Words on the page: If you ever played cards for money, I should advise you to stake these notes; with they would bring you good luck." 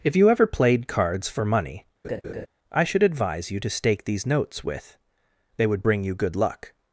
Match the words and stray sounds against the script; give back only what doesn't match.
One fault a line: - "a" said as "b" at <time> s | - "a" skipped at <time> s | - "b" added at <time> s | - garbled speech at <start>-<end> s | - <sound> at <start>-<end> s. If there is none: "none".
- laugh at 2.0-2.5 s